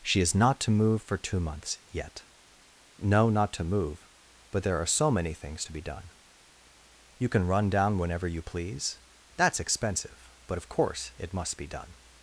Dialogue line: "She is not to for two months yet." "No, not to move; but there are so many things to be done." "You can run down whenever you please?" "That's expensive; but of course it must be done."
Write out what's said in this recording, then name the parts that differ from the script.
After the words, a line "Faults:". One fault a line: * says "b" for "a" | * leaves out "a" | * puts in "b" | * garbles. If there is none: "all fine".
"She is not to move for two months yet." "No, not to move; but there are so many things to be done." "You can run down whenever you please?" "That's expensive; but of course it must be done."
Faults:
* puts in "move"